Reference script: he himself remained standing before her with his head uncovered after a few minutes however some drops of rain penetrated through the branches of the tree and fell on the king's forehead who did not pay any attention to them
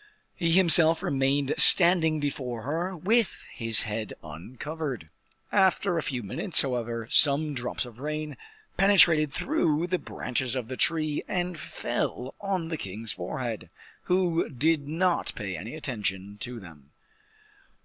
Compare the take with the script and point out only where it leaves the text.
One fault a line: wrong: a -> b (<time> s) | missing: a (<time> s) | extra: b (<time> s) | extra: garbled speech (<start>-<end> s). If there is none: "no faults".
no faults